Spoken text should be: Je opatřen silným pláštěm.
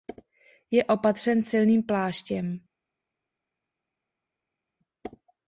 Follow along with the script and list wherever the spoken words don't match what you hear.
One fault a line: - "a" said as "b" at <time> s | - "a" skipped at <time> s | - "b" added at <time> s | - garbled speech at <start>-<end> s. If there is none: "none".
none